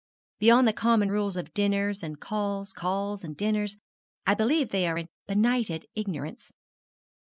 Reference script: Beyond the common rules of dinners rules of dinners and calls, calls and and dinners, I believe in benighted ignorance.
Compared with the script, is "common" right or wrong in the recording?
right